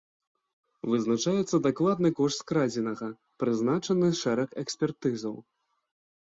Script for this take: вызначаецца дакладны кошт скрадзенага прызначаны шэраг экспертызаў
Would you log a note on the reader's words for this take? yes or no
no